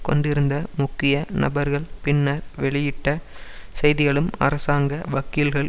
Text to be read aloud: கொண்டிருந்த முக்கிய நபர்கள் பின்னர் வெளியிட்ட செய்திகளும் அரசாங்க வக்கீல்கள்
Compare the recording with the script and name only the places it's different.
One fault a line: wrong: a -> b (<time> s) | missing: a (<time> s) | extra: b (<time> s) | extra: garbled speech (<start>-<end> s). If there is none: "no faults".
no faults